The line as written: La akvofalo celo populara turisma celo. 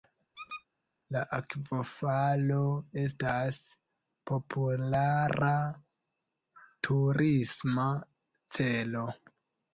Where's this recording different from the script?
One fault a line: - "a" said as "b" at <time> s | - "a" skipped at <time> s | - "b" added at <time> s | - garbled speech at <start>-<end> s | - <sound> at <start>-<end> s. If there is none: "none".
- squeak at 0.3-0.6 s
- "celo" said as "estas" at 3.0 s